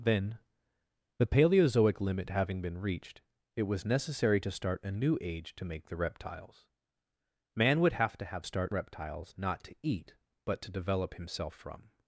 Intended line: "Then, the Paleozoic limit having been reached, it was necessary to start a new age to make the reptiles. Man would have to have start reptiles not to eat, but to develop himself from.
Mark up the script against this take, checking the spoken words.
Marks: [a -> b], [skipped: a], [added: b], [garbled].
"Then, the Paleozoic limit having been reached, it was necessary to start a new age to make the reptiles. Man would have to have start reptiles not to eat, but to develop himself from.